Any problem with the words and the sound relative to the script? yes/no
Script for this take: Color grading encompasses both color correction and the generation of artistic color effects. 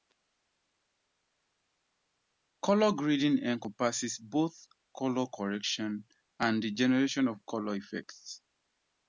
yes